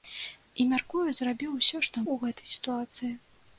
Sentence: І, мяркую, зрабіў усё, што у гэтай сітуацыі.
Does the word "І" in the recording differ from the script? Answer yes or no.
no